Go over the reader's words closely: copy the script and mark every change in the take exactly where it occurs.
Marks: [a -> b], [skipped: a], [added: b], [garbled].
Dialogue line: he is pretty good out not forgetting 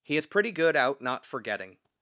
he is pretty good out not forgetting